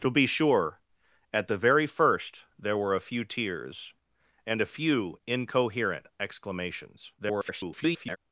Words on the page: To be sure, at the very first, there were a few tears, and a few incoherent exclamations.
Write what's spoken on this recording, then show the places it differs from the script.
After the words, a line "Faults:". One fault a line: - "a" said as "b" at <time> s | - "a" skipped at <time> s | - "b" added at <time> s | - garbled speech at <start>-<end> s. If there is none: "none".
To be sure, at the very first, there were a few tears, and a few incoherent exclamations. [garbled]
Faults:
- garbled speech at 7.2-8.2 s